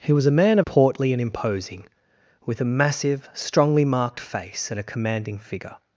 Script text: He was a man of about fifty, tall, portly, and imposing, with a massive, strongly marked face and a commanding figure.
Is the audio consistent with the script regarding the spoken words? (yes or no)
no